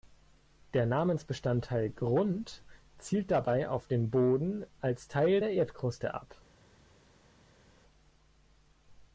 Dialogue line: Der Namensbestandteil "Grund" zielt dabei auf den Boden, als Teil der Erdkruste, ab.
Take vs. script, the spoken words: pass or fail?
pass